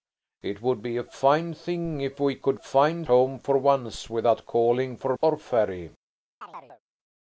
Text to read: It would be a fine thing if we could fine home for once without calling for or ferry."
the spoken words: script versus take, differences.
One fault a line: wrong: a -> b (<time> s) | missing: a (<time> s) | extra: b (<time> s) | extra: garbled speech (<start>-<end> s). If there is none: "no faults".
no faults